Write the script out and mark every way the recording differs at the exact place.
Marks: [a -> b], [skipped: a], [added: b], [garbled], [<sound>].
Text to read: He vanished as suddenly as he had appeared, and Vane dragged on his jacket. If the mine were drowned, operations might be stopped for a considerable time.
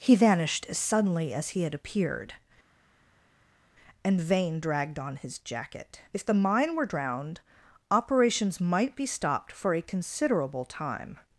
He vanished as suddenly as he had appeared, and Vane dragged on his jacket. If the mine were drowned, operations might be stopped for a considerable time.